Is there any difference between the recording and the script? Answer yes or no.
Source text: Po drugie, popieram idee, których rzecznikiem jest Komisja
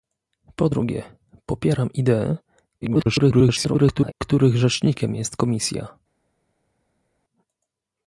yes